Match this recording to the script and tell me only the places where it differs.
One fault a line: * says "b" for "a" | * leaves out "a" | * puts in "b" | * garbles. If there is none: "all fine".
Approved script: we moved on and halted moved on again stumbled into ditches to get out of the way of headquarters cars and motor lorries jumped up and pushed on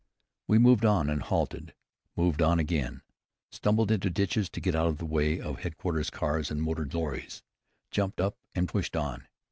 all fine